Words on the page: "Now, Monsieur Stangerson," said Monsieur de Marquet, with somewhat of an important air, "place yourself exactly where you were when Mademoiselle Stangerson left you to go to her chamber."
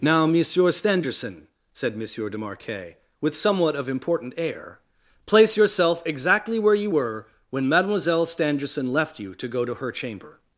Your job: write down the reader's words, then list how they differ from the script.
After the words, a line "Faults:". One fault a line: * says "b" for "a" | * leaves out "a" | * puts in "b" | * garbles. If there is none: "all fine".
"Now, Monsieur Stangerson," said Monsieur de Marquet, with somewhat of important air, "place yourself exactly where you were when Mademoiselle Stangerson left you to go to her chamber."
Faults:
* leaves out "an"